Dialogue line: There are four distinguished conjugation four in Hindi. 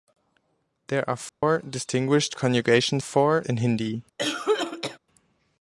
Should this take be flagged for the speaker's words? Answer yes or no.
no